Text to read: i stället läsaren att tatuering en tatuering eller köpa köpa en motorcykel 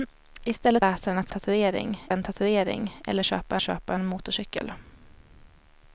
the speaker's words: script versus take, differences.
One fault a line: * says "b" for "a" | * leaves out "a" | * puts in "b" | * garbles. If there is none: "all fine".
all fine